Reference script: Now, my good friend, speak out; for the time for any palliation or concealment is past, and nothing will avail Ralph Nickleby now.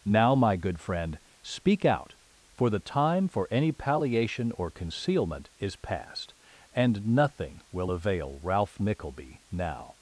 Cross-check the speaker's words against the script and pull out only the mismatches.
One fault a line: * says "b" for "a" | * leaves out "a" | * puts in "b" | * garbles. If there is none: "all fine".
all fine